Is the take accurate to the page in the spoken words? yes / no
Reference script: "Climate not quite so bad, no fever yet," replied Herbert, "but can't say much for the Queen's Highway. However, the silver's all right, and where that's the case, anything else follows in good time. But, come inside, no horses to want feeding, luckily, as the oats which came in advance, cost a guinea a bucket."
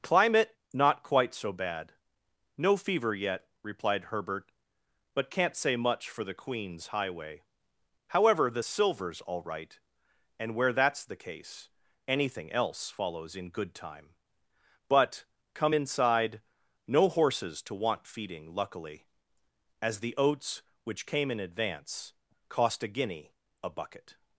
yes